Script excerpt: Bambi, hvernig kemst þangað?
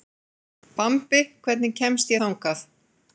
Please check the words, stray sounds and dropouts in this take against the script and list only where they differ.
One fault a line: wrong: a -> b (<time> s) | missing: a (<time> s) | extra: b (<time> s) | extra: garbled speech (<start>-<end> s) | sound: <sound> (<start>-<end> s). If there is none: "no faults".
no faults